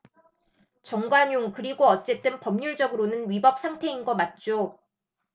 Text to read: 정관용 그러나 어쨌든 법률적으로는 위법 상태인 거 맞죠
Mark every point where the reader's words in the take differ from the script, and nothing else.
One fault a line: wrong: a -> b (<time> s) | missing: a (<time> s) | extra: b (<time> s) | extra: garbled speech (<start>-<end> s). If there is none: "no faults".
wrong: 그러나 -> 그리고 (1.5 s)